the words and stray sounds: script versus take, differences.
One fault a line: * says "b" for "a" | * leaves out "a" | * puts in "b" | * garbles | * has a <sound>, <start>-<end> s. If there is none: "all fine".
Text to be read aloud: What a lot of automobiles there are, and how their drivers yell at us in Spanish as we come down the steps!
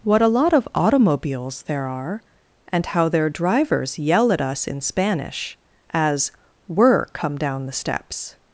* says "were" for "we"